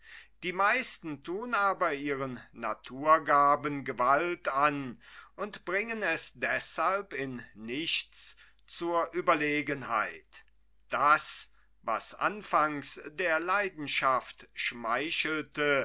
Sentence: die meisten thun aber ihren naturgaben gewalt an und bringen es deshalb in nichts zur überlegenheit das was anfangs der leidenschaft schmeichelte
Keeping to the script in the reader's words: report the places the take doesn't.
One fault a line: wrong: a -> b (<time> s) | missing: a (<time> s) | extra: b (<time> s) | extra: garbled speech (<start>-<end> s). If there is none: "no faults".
no faults